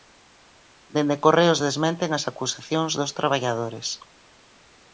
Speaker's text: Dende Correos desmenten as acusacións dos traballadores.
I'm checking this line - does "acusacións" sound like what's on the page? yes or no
yes